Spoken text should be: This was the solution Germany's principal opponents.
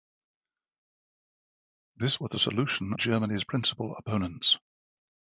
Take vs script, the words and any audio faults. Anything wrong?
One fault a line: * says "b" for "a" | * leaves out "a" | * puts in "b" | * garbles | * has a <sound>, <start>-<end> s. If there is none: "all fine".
all fine